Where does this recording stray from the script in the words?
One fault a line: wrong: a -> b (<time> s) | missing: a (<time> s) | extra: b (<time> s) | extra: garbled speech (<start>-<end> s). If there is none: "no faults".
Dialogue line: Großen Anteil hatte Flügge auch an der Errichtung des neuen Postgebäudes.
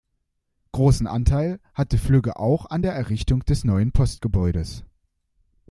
no faults